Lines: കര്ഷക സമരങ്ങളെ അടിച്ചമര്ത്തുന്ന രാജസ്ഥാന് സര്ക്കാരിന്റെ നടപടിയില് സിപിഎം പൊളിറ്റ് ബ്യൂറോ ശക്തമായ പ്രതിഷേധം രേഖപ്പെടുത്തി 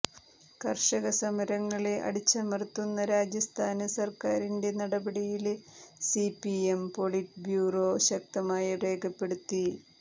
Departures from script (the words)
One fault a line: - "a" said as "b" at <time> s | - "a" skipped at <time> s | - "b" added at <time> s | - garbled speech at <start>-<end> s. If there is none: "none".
- "പ്രതിഷേധം" skipped at 8.7 s